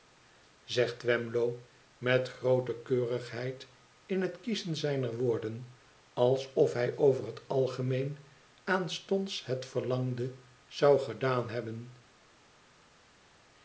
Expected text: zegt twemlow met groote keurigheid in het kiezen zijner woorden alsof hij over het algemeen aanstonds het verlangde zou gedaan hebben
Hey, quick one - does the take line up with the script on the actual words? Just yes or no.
yes